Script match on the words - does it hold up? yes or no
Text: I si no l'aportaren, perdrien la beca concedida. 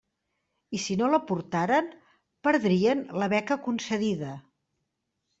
yes